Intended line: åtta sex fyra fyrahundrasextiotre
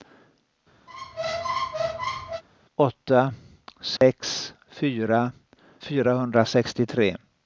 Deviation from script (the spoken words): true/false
false